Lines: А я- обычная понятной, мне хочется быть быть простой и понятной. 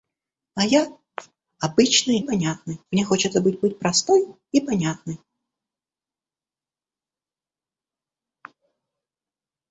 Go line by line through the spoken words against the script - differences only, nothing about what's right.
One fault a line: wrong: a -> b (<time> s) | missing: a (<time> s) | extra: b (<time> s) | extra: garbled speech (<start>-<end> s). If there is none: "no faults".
no faults